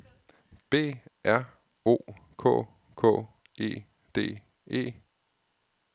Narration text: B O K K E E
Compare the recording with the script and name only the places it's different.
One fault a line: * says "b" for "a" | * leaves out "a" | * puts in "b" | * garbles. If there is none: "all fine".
* puts in "R"
* puts in "D"